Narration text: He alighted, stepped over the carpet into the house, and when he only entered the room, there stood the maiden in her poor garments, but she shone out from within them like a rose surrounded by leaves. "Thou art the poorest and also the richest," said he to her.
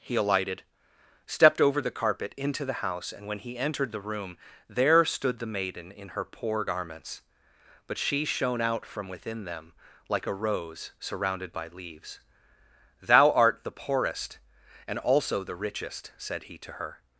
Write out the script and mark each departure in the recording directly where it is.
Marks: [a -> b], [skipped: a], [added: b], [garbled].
He alighted, stepped over the carpet into the house, and when he [skipped: only] entered the room, there stood the maiden in her poor garments, but she shone out from within them like a rose surrounded by leaves. "Thou art the poorest and also the richest," said he to her.